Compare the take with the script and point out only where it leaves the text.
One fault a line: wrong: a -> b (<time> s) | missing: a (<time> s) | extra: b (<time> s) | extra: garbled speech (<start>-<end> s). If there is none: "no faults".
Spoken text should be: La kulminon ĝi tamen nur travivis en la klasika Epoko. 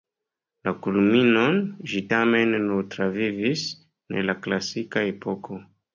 no faults